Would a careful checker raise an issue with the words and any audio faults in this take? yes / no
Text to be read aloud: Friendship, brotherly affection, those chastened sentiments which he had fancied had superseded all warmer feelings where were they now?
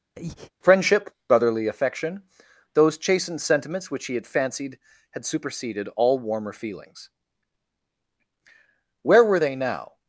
yes